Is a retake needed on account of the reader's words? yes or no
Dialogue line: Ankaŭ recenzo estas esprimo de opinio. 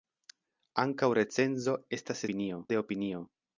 yes